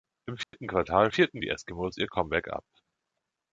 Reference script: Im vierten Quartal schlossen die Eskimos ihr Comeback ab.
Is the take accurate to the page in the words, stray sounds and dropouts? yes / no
no